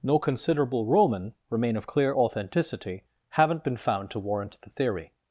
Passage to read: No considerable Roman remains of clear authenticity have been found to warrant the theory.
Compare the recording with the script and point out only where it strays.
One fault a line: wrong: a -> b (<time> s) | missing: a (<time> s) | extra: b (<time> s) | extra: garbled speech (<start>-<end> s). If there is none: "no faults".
wrong: remains -> remain (1.5 s)
wrong: have -> haven't (3.3 s)